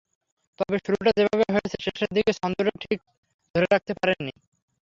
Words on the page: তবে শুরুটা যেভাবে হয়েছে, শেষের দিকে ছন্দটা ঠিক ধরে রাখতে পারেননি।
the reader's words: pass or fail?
pass